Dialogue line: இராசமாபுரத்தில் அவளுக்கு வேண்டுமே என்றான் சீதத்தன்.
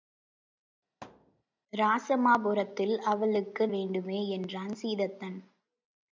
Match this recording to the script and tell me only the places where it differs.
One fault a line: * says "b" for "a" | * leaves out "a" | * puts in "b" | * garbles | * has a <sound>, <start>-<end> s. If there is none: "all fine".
* has a thud, 1.0-1.4 s